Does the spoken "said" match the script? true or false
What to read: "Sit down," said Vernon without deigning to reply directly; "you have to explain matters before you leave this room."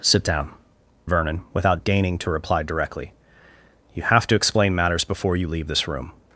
false